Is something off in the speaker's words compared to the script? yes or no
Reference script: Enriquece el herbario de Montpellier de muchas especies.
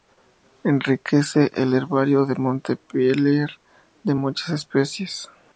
no